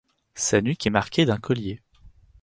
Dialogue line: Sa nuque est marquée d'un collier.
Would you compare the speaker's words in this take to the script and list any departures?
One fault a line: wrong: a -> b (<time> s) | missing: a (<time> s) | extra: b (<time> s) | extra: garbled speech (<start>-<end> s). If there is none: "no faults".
no faults